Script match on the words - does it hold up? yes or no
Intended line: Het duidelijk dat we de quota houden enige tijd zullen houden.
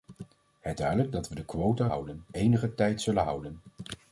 yes